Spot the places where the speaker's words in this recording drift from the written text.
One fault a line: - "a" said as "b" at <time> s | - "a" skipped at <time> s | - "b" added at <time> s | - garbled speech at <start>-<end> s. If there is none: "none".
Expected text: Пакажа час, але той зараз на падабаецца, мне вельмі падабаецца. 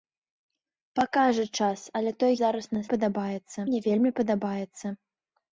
none